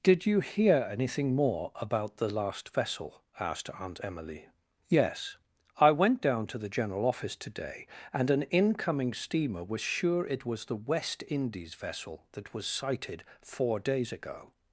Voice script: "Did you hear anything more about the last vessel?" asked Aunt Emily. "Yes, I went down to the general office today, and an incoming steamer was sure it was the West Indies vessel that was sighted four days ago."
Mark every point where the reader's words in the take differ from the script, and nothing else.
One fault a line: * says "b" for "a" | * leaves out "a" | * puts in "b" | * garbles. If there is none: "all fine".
all fine